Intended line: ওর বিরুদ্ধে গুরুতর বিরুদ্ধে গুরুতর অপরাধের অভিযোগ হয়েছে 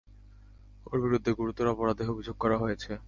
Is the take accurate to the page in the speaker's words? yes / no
no